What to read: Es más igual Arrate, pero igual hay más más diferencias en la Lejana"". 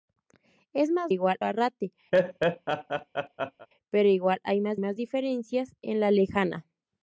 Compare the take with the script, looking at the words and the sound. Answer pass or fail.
fail